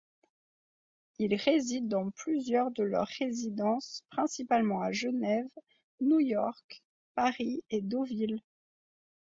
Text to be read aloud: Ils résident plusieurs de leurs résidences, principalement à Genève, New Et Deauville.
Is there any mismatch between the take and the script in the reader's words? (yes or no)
yes